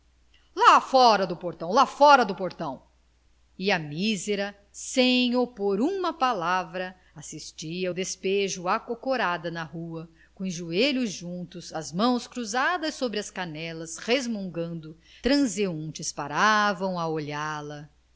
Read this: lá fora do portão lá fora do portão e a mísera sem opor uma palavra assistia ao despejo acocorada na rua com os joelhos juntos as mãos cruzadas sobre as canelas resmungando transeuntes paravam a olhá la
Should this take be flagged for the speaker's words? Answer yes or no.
no